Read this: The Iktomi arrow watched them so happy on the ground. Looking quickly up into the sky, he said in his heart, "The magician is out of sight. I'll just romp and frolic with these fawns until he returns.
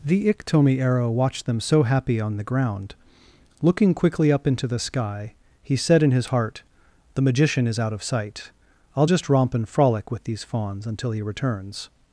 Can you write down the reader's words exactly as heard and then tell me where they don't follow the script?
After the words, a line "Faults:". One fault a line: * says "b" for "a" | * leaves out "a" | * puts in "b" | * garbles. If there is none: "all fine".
The Iktomi arrow watched them so happy on the ground. Looking quickly up into the sky, he said in his heart, "The magician is out of sight. I'll just romp and frolic with these fawns until he returns.
Faults:
all fine